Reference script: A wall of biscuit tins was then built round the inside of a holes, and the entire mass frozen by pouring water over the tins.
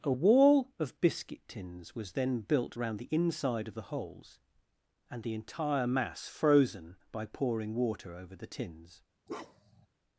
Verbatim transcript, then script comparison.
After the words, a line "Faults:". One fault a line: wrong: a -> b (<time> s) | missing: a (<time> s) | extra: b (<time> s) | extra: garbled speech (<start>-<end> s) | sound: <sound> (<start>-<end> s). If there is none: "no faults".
A wall of biscuit tins was then built round the inside of the holes, and the entire mass frozen by pouring water over the tins.
Faults:
wrong: a -> the (3.7 s)
sound: bark (9.3-9.9 s)